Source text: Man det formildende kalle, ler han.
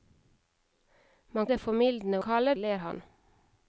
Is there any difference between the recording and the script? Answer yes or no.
no